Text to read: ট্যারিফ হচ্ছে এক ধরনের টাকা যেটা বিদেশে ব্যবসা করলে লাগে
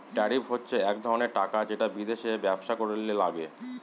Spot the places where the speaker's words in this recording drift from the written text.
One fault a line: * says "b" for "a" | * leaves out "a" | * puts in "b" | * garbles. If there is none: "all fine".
all fine